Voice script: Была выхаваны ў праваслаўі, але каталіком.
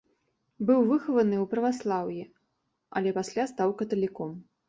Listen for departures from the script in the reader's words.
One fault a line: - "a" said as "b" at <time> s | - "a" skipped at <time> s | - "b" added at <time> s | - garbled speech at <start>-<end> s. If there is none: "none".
- "Была" said as "Быў" at 0.7 s
- "пасля стаў" added at 3.2 s